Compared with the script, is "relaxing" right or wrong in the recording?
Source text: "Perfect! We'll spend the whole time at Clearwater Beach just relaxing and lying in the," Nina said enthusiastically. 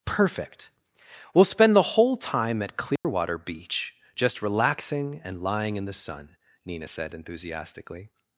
right